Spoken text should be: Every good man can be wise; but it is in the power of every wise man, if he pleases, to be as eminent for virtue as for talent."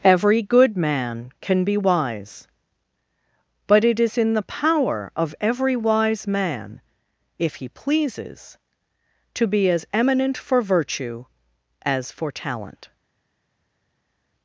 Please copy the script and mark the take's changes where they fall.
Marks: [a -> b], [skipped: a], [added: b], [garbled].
Every good man can be wise; but it is in the power of every wise man, if he pleases, to be as eminent for virtue as for talent."